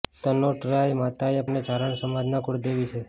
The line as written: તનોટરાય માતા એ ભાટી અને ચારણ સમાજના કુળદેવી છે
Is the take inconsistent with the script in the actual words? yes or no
yes